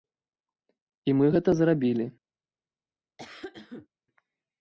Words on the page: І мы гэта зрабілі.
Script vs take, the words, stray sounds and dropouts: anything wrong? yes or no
yes